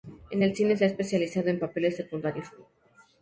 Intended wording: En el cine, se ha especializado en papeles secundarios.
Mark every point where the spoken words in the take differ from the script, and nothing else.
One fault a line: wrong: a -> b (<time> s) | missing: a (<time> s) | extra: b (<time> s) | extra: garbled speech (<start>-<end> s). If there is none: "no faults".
no faults